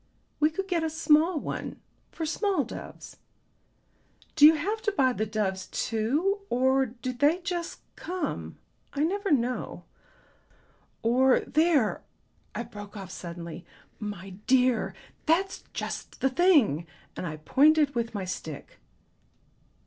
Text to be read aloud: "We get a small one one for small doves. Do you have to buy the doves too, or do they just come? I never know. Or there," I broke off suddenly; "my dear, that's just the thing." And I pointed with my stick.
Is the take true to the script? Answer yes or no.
no